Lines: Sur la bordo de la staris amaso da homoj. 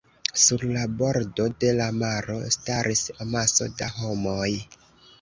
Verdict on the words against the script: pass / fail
fail